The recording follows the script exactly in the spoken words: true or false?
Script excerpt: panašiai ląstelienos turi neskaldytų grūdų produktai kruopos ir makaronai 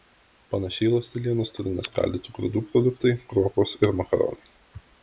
true